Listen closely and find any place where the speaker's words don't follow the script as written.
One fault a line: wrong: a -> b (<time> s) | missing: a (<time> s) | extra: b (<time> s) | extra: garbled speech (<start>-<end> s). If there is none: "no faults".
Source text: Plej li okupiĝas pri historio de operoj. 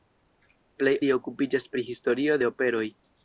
no faults